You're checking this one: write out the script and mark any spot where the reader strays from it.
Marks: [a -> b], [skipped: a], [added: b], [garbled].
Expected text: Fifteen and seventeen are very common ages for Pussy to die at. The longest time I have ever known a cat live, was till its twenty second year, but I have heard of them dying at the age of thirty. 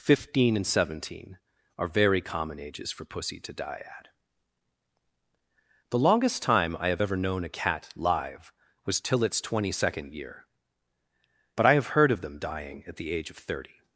Fifteen and seventeen are very common ages for Pussy to die at. The longest time I have ever known a cat live, was till its twenty second year, but I have heard of them dying at the age of thirty.